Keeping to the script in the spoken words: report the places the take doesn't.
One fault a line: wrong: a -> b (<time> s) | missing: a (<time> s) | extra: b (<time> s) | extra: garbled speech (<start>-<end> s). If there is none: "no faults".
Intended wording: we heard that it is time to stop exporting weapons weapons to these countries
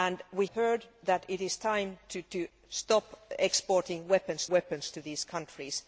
no faults